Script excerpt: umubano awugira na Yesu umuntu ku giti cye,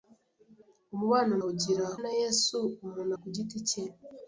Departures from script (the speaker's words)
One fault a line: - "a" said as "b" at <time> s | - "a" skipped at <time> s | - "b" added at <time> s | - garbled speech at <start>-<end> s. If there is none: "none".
none